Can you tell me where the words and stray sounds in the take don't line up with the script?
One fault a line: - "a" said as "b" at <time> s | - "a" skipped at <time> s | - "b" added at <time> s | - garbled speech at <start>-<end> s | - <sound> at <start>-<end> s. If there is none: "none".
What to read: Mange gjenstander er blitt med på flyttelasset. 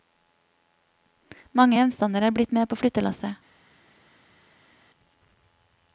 none